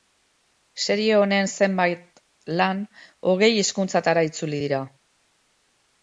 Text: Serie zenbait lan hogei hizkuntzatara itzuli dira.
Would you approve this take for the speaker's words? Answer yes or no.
no